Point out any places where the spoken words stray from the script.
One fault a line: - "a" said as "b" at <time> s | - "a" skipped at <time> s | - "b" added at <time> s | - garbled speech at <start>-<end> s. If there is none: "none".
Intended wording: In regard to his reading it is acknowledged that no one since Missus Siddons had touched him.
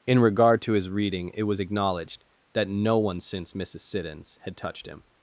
- "is" said as "was" at 1.4 s